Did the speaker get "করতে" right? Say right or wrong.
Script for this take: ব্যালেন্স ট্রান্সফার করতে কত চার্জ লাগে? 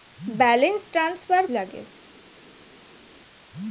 wrong